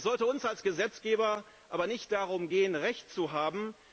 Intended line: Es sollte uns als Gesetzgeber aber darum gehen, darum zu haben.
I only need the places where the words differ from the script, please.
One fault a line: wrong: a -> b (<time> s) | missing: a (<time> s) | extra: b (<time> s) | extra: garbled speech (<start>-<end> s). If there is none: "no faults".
extra: nicht (1.9 s)
wrong: darum -> recht (2.8 s)